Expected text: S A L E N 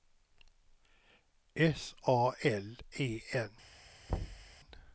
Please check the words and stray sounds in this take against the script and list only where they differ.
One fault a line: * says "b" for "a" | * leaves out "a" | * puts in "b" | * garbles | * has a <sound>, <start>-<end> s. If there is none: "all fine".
* has a thud, 4.1-4.5 s